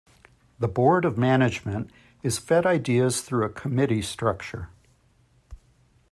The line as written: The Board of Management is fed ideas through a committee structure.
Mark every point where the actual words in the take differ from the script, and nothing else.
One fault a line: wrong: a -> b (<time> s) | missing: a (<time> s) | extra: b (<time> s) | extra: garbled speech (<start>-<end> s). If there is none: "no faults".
no faults